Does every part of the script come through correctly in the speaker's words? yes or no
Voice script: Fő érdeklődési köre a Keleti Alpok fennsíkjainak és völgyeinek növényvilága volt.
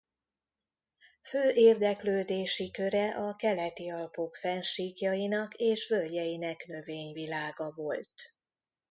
yes